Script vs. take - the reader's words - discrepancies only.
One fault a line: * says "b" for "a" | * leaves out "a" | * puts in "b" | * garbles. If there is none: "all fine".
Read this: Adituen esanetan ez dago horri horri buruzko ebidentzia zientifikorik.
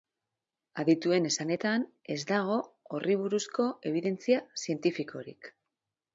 * leaves out "horri"